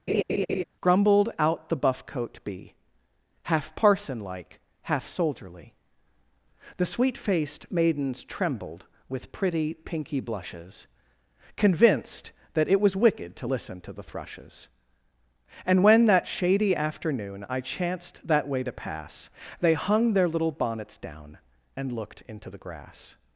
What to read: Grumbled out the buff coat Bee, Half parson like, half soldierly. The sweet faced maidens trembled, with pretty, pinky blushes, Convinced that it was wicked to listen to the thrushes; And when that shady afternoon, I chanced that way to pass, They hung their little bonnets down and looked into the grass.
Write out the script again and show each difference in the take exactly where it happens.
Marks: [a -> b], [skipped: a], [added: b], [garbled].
Grumbled out the buff coat Bee, Half parson like, half soldierly. The sweet faced maidens trembled, with pretty, pinky blushes, Convinced that it was wicked to listen to the thrushes; And when that shady afternoon, I chanced that way to pass, They hung their little bonnets down and looked into the grass.